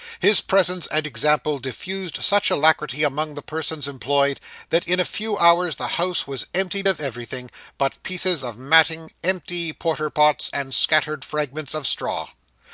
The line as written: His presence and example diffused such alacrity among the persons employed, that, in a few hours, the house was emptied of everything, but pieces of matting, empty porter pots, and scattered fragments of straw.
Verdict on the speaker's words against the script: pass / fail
pass